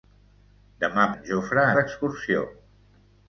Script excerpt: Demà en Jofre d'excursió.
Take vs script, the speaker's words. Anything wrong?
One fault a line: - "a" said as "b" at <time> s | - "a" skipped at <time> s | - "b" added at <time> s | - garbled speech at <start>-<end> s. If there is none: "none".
none